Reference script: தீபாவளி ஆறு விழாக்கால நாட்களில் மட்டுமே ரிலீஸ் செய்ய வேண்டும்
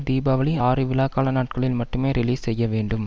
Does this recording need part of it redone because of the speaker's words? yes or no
no